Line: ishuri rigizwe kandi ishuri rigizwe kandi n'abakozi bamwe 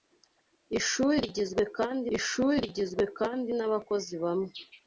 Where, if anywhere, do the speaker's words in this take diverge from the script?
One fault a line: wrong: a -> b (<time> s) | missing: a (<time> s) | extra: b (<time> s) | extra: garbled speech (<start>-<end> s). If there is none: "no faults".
no faults